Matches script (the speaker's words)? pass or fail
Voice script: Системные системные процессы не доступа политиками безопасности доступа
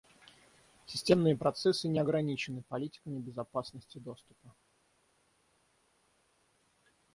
fail